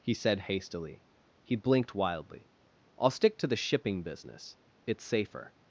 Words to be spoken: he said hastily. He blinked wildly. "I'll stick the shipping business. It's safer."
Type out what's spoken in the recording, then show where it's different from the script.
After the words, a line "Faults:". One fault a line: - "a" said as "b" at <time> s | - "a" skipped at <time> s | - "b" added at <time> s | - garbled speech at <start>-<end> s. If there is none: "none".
he said hastily. He blinked wildly. "I'll stick to the shipping business. It's safer."
Faults:
- "to" added at 3.4 s